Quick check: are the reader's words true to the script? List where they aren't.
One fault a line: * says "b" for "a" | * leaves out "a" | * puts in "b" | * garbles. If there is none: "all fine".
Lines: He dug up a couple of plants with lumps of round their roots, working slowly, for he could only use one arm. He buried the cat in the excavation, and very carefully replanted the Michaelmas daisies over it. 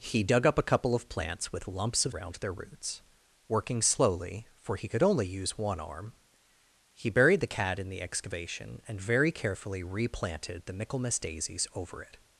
all fine